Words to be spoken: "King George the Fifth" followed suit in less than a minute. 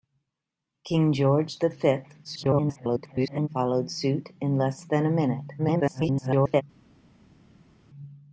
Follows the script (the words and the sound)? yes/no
no